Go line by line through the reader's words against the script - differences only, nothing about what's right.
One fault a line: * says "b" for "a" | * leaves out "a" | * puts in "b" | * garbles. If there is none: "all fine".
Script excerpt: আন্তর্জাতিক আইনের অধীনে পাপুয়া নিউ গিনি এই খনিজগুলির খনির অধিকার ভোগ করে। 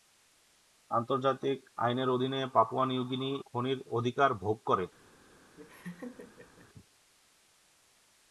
* leaves out "এই খনিজগুলির"